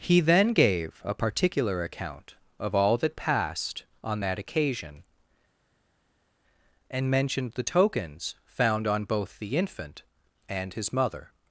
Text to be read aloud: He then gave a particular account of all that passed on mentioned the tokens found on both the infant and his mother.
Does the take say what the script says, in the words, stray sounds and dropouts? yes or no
no